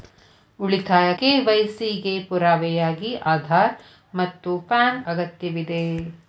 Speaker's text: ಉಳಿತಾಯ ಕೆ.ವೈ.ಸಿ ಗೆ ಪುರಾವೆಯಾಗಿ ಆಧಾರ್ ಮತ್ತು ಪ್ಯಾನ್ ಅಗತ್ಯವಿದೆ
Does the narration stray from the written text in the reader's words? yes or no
no